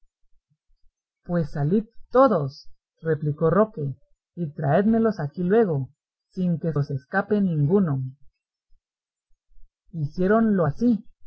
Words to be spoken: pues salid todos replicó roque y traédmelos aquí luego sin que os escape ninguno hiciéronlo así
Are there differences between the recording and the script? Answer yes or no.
no